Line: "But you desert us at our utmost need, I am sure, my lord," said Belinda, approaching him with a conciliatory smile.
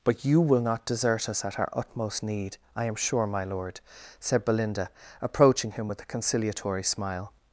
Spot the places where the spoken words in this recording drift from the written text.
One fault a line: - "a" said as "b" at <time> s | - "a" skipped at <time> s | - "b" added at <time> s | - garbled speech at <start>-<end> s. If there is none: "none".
- "will not" added at 0.4 s